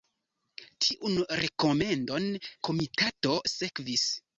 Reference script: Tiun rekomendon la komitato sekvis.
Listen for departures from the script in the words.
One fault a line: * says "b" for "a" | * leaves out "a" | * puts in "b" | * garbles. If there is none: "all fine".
* leaves out "la"